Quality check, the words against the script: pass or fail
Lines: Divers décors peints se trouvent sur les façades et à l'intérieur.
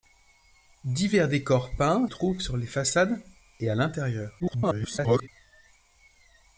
fail